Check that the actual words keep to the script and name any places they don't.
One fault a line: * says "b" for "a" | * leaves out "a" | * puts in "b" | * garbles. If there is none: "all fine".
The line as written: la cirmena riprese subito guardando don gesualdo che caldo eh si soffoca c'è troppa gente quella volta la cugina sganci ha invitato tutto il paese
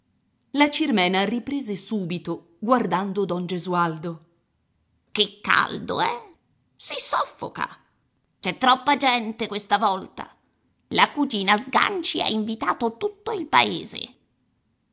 * says "questa" for "quella"